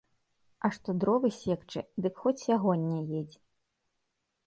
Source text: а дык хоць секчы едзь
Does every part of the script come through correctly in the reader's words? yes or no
no